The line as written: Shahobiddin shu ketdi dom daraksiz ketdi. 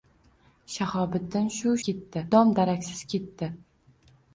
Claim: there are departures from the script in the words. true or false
false